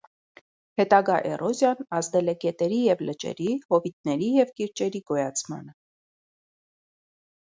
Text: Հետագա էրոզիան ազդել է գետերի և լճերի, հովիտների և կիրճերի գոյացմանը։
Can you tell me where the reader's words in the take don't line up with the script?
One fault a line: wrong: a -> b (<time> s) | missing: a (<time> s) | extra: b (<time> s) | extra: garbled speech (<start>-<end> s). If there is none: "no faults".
no faults